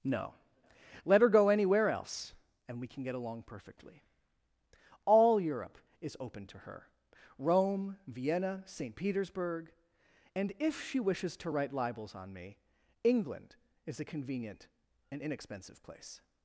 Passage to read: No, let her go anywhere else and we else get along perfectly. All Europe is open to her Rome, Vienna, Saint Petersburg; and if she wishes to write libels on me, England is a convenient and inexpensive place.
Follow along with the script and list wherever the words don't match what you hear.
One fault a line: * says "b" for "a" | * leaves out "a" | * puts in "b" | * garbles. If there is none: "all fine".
* says "can" for "else"